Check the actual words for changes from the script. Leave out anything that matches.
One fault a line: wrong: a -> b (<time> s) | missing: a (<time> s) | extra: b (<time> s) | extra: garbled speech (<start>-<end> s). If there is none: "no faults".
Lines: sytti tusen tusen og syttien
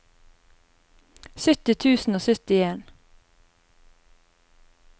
missing: tusen (2.1 s)